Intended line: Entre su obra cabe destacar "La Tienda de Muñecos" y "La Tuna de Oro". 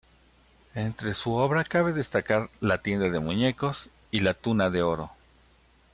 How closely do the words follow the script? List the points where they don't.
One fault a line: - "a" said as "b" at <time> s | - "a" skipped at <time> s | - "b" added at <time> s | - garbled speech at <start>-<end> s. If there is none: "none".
none